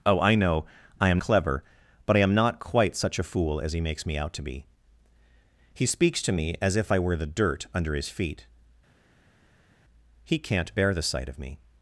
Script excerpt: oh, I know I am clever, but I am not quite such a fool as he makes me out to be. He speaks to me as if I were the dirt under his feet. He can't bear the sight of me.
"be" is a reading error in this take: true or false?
false